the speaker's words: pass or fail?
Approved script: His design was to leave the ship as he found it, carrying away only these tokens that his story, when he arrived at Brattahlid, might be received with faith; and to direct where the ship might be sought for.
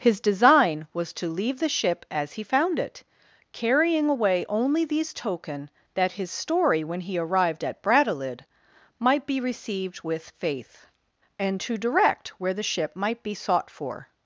fail